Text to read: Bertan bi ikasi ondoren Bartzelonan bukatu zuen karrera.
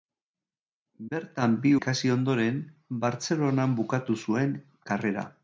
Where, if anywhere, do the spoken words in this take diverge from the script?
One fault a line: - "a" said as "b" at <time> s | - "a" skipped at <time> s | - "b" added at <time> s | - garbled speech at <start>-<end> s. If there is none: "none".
none